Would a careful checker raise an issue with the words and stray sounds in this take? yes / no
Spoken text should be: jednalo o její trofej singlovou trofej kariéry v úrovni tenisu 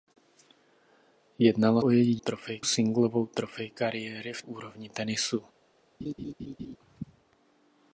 yes